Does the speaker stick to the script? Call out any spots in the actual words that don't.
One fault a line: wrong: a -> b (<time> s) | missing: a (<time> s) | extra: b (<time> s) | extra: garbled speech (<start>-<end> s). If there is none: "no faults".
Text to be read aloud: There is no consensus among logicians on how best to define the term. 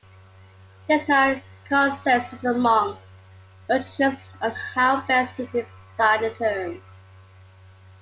no faults